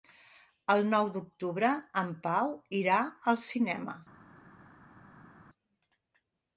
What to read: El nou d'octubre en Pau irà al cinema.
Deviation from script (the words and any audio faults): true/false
false